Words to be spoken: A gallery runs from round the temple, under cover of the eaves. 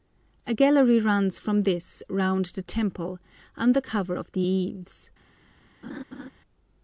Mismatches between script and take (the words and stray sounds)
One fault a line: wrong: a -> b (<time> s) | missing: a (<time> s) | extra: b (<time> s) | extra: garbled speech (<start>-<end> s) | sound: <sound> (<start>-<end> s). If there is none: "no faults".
extra: this (1.6 s)
sound: laugh (5.8-6.3 s)